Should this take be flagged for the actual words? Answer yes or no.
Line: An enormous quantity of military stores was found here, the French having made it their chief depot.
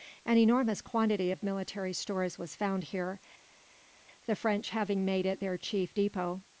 no